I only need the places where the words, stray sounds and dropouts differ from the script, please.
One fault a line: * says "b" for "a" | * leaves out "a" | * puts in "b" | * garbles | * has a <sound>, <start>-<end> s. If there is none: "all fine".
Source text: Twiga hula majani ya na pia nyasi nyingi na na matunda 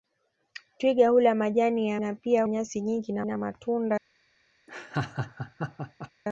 * has a laugh, 4.7-6.1 s